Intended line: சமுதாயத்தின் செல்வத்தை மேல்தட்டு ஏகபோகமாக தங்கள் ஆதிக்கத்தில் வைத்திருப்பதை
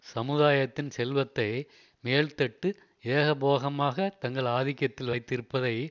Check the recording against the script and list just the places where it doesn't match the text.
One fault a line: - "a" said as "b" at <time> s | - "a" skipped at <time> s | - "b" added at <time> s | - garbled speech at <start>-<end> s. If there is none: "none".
none